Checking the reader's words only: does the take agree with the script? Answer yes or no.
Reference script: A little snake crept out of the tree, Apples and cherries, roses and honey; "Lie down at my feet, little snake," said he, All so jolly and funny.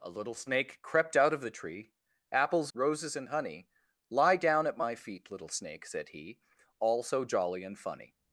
no